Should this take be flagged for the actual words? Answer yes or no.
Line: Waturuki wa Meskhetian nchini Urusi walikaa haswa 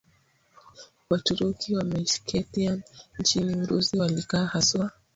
no